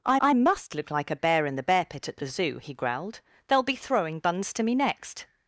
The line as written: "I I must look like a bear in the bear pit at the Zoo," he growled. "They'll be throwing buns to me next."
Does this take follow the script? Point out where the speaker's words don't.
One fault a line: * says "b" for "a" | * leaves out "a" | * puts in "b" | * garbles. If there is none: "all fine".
all fine